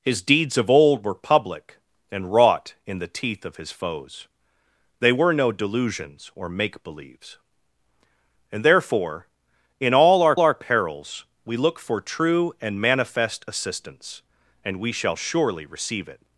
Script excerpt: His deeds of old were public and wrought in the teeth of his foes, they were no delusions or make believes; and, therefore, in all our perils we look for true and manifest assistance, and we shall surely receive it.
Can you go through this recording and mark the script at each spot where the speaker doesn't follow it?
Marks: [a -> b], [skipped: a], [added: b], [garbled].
His deeds of old were public and wrought in the teeth of his foes, they were no delusions or make believes; and, therefore, in all our [added: our] perils we look for true and manifest assistance, and we shall surely receive it.